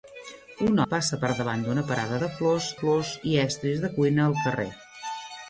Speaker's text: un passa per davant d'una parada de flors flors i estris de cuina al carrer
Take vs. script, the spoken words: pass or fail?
pass